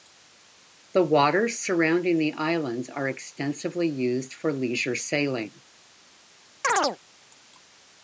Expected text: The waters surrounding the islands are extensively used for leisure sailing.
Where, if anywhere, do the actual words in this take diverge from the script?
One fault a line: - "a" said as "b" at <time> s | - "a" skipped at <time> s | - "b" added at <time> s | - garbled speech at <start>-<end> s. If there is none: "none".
none